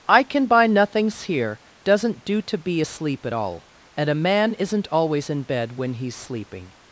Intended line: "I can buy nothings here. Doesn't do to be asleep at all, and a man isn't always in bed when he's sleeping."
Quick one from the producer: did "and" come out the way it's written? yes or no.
yes